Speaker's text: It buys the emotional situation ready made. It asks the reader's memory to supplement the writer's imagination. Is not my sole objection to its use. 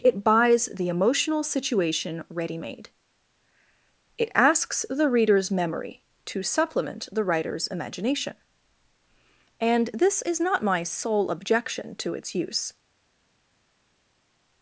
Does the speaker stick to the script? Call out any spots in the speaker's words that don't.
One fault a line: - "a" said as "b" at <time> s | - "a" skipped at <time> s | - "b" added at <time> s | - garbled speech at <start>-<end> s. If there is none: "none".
- "And this" added at 9.6 s